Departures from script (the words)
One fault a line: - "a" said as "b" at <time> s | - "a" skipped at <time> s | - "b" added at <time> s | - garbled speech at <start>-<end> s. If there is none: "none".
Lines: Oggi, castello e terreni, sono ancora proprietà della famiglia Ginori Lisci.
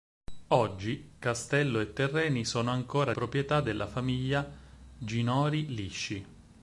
none